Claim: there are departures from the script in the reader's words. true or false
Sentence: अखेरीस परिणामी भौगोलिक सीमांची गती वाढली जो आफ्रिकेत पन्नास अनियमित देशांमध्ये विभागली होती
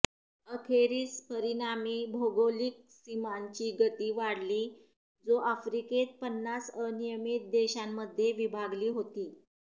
false